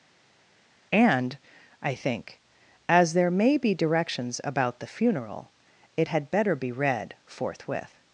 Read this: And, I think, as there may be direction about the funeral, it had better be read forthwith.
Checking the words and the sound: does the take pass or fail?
fail